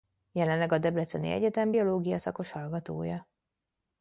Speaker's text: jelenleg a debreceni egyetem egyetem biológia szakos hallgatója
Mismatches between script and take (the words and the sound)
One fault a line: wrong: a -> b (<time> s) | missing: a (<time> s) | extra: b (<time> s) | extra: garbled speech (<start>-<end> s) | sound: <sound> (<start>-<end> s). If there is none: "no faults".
missing: egyetem (1.7 s)